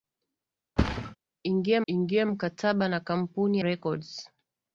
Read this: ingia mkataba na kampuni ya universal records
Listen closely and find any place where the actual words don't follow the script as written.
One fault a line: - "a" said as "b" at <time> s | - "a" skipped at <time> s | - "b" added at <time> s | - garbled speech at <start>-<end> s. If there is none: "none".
- "ingia" added at 1.9 s
- "ya universal" skipped at 3.6 s